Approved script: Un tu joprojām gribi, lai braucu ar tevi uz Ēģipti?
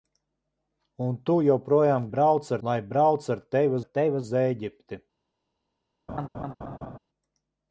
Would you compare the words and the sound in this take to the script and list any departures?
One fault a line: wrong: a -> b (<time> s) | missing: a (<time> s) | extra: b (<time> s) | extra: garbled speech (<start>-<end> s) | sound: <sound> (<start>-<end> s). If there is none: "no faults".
wrong: gribi -> braucu (2.2 s)
extra: ar tevi (3.8 s)
sound: laugh (6.1-7.0 s)